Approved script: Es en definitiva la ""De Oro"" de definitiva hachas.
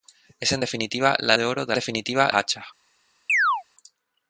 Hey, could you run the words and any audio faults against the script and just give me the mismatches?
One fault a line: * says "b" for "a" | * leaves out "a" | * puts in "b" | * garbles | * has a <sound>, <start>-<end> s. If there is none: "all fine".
* has a chirp, 3.3-3.6 s